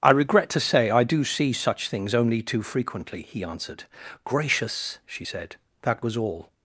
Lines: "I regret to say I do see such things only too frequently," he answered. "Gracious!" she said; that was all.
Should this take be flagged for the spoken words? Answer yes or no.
no